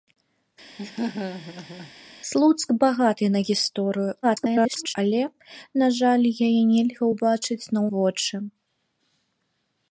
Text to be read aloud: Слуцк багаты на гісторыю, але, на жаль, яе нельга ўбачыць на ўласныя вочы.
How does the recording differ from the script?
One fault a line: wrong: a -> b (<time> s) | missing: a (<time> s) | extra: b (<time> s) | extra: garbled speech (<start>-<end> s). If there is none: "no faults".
extra: garbled speech (4.2-4.9 s)
missing: ўласныя (7.9 s)